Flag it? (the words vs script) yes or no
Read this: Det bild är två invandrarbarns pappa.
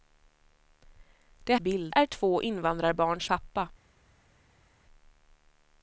no